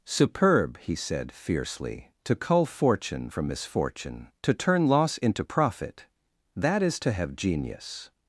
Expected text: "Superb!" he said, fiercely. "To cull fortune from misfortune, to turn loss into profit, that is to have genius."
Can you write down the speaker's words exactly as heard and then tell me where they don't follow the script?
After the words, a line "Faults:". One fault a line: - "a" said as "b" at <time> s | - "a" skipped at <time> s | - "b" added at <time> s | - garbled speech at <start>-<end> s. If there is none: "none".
"Superb!" he said, fiercely. "To cull fortune from misfortune, to turn loss into profit, that is to have genius."
Faults:
none